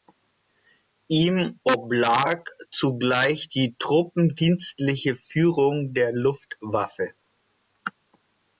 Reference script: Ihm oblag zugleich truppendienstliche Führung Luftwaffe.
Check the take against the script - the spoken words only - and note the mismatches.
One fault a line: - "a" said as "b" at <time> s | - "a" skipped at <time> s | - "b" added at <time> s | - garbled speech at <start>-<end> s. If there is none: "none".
- "die" added at 3.5 s
- "der" added at 5.9 s